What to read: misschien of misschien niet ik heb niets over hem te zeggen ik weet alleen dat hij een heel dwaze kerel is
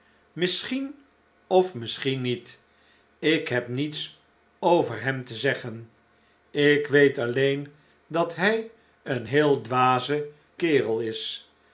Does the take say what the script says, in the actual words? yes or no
yes